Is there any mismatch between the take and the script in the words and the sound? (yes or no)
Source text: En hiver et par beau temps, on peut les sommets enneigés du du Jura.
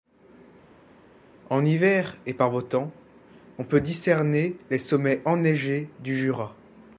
yes